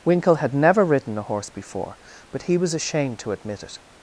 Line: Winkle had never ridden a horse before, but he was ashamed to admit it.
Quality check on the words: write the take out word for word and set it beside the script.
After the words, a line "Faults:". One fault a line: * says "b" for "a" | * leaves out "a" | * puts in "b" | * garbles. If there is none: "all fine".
Winkle had never ridden a horse before, but he was ashamed to admit it.
Faults:
all fine